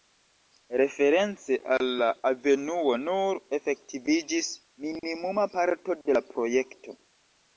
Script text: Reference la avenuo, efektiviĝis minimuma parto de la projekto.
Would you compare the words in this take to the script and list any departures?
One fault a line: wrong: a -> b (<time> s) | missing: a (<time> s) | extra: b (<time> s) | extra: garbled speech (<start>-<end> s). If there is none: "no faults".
extra: al (1.7 s)
extra: nur (3.0 s)